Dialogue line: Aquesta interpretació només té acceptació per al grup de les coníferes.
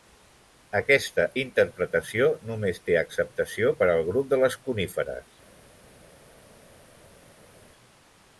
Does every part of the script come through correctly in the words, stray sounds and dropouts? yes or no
yes